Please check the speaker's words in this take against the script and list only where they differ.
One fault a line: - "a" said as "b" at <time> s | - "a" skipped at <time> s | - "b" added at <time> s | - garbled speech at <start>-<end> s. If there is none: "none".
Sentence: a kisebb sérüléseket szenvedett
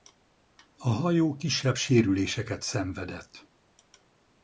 - "hajó" added at 0.9 s